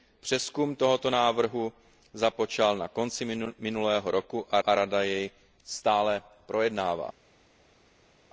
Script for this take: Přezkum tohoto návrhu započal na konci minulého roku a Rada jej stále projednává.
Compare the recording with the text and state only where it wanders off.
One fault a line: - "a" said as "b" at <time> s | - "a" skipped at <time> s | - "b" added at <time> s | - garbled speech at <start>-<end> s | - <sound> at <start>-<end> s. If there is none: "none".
- "a" added at 4.7 s